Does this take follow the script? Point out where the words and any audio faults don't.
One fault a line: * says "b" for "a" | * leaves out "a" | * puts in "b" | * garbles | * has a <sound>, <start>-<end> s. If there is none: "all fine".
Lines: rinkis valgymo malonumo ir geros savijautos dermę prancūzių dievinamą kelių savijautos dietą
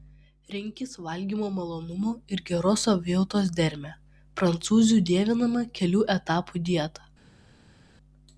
* says "etapų" for "savijautos"